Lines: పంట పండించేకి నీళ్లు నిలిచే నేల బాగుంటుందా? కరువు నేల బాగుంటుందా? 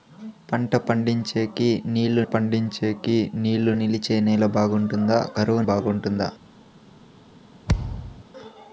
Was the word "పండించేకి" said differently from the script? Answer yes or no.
no